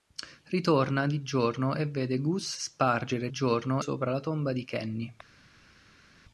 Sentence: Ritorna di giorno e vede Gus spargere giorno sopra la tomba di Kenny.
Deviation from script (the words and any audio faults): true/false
false